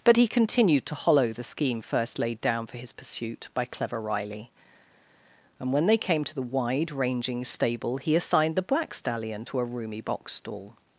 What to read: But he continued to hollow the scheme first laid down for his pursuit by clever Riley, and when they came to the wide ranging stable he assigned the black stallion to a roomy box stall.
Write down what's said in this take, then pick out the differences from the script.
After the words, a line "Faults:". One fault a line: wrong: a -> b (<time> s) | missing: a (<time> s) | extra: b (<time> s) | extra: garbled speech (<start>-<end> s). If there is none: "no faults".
But he continued to hollow the scheme first laid down for his pursuit by clever Riley, and when they came to the wide ranging stable he assigned the black stallion to a roomy box stall.
Faults:
no faults